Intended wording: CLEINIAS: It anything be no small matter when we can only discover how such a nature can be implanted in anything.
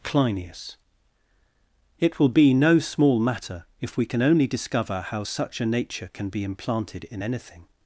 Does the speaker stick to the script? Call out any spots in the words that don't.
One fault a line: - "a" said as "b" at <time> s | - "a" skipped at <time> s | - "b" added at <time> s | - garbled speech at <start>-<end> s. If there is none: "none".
- "anything" said as "will" at 2.2 s
- "when" said as "if" at 3.8 s